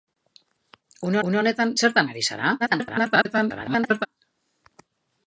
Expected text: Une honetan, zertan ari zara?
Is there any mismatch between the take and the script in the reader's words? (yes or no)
yes